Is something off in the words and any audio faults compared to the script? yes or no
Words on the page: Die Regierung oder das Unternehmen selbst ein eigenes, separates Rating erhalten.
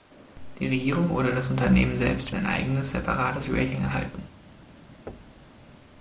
yes